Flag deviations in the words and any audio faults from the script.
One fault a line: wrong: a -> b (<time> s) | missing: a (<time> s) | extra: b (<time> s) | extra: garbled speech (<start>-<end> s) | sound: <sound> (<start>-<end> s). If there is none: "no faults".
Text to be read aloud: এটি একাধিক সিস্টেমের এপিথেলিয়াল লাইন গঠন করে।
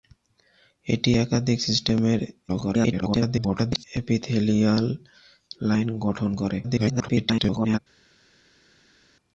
extra: garbled speech (2.5-3.8 s)
extra: garbled speech (6.6-7.8 s)